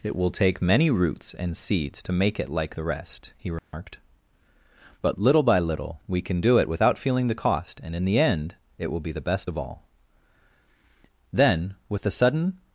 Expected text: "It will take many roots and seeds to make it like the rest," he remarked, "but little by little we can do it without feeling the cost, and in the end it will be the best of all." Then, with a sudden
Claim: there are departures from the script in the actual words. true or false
false